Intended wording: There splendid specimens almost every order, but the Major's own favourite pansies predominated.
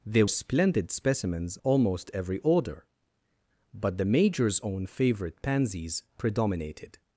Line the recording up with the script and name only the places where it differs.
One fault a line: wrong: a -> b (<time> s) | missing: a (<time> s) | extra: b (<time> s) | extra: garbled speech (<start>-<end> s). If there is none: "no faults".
no faults